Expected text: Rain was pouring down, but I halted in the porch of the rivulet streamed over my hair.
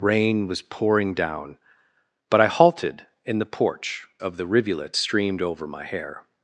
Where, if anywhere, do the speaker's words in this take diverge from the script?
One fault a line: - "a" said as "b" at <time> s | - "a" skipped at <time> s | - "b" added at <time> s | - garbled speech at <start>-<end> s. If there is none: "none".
none